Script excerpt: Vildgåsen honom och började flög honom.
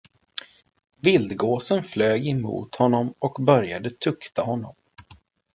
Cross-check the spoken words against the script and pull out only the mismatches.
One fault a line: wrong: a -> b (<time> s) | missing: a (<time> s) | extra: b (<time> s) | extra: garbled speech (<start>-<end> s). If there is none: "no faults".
extra: flög emot (1.8 s)
wrong: flög -> tukta (3.9 s)